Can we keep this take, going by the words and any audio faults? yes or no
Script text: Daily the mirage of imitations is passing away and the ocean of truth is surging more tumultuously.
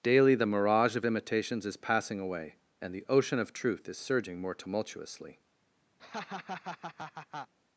no